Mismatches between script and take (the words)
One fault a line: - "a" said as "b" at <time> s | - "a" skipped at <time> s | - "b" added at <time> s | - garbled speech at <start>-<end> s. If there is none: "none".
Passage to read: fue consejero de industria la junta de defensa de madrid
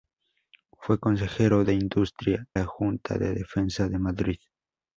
none